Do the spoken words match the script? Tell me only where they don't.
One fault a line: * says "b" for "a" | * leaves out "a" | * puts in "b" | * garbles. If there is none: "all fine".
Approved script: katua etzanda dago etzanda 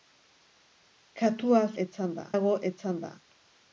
all fine